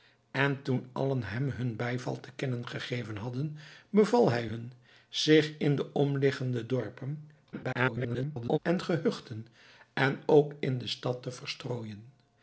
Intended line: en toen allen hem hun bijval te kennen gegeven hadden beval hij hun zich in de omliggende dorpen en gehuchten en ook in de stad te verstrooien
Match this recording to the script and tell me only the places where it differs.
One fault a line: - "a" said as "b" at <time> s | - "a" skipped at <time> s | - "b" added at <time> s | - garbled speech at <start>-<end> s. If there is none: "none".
- garbled speech at 7.5-8.6 s